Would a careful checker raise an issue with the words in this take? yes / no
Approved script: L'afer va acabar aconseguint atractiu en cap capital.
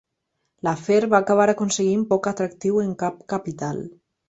yes